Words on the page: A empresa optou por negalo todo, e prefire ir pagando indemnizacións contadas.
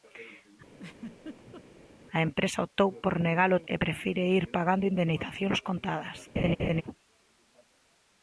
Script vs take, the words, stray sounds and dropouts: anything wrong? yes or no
yes